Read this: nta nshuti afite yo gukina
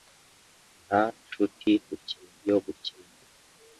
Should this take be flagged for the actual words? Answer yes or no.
yes